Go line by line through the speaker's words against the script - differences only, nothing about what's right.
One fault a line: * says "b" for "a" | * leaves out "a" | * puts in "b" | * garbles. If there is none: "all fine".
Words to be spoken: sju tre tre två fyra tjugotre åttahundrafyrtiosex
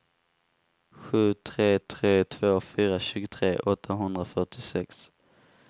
all fine